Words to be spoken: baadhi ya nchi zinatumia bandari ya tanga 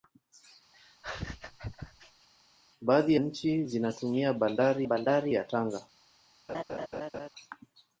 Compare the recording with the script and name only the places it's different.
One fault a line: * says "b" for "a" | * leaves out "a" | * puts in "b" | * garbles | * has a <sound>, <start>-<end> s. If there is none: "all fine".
* has a laugh, 0.7-2.3 s
* leaves out "ya"
* puts in "bandari"
* has a laugh, 6.5-7.3 s